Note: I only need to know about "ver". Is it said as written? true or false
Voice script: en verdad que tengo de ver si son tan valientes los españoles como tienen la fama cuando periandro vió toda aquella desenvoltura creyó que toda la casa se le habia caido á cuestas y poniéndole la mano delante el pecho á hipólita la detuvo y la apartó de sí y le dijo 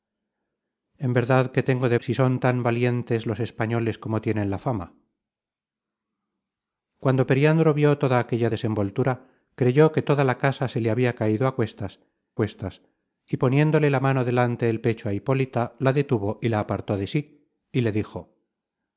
false